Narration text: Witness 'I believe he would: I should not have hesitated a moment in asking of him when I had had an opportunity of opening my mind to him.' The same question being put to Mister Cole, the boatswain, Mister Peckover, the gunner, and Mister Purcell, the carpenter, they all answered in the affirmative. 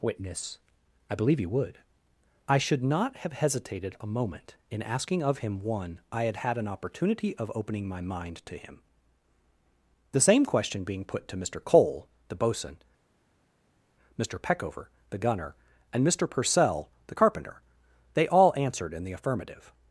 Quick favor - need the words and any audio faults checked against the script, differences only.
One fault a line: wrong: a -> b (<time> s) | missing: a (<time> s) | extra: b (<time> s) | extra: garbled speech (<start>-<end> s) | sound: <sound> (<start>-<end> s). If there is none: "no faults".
wrong: when -> one (5.6 s)